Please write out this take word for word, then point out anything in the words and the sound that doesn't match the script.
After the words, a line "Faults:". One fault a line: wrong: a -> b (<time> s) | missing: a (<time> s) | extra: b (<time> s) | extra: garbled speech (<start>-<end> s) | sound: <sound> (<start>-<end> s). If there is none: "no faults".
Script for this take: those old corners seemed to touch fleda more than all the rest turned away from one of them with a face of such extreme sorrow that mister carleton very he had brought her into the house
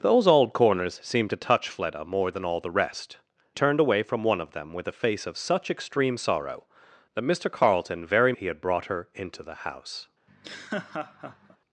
those old corners seemed to touch fleda more than all the rest turned away from one of them with a face of such extreme sorrow that mister carleton very he had brought her into the house
Faults:
sound: laugh (10.3-11.6 s)